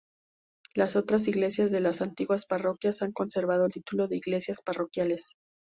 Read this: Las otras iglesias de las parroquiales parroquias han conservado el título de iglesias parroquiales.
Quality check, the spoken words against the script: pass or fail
fail